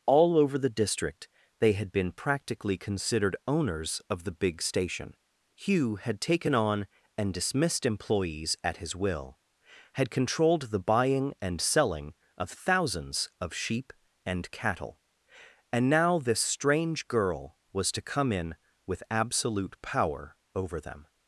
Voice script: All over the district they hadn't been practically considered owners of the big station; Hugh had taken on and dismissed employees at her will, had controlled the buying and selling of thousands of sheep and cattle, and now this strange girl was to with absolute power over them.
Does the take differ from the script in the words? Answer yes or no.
yes